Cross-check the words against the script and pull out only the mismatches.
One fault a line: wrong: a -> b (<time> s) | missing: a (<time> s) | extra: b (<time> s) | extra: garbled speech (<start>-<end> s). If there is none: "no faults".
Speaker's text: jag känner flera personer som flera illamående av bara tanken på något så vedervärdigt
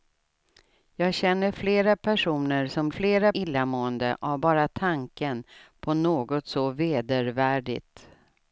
no faults